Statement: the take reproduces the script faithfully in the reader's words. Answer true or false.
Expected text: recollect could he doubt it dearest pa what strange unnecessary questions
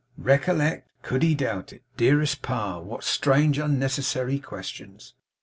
true